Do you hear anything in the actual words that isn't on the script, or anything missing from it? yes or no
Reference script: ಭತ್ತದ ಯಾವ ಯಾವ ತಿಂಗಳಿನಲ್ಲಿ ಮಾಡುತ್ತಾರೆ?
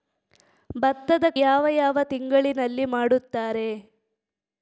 no